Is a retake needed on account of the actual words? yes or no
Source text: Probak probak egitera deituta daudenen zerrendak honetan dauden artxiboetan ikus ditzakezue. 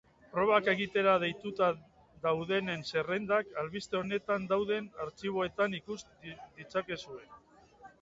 yes